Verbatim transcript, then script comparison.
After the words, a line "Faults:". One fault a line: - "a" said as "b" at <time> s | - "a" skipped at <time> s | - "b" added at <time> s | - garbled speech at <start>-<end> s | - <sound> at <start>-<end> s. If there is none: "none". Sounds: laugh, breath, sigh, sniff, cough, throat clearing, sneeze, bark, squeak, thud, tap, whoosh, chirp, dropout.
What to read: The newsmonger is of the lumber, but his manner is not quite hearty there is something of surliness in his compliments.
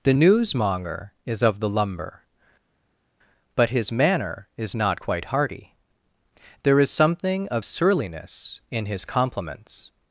The newsmonger is of the lumber, but his manner is not quite hearty there is something of surliness in his compliments.
Faults:
none